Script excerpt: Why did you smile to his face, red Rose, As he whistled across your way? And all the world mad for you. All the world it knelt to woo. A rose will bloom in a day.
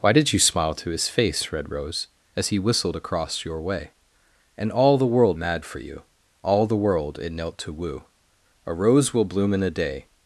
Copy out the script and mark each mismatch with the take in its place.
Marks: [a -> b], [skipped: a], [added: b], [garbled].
Why did you smile to his face, red Rose, As he whistled across your way? And all the world mad for you. All the world it knelt to woo. A rose will bloom in a day.